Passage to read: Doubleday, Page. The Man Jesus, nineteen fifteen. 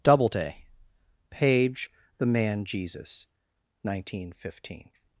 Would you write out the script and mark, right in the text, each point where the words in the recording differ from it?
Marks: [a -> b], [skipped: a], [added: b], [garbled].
Doubleday, Page. The Man Jesus, nineteen fifteen.